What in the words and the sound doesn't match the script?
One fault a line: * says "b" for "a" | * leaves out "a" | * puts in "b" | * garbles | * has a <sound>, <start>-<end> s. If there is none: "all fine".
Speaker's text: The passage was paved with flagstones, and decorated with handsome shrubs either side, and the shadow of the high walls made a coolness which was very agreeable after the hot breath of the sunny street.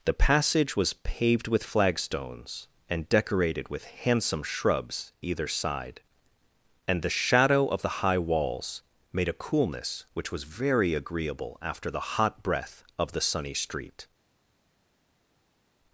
all fine